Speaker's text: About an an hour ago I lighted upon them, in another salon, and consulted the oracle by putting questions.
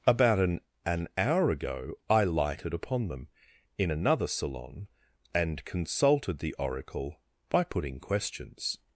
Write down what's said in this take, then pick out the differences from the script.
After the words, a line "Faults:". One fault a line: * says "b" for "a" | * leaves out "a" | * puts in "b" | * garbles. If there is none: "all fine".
About an an hour ago I lighted upon them, in another salon, and consulted the oracle by putting questions.
Faults:
all fine